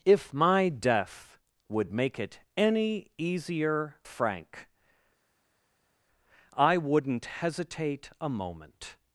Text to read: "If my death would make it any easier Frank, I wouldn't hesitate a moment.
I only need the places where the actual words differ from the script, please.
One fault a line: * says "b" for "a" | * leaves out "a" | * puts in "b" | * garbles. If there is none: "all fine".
all fine